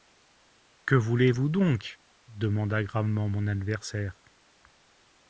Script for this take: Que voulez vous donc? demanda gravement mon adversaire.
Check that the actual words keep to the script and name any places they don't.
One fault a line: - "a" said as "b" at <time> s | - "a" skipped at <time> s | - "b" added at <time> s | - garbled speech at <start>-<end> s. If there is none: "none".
none